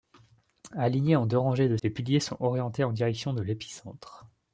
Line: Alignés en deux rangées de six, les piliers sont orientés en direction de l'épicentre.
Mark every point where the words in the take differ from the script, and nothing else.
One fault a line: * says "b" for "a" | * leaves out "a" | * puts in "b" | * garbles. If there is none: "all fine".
* leaves out "six"